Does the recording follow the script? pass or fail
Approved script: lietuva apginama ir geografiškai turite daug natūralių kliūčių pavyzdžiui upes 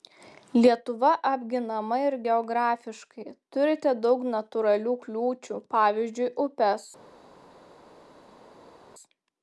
pass